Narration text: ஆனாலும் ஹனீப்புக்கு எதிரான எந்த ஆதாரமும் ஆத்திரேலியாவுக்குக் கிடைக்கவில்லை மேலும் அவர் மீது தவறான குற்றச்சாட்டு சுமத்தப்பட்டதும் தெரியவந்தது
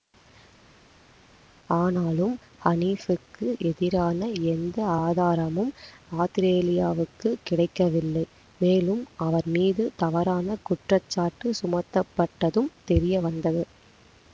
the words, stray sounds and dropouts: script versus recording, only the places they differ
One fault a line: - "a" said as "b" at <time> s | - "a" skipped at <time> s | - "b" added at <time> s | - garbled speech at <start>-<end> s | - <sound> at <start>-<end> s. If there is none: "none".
none